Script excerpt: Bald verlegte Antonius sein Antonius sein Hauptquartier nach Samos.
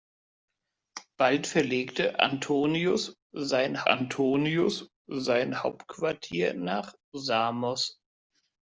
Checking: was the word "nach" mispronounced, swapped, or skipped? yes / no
no